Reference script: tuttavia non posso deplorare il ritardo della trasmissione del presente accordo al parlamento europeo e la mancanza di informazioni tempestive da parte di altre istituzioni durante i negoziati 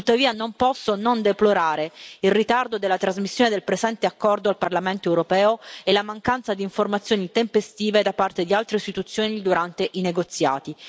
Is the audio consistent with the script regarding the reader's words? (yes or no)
no